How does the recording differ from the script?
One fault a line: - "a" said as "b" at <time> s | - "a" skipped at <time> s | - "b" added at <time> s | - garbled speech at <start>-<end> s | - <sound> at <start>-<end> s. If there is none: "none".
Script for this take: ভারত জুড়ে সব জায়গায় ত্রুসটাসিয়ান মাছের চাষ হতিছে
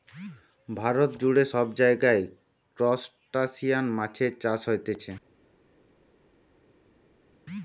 none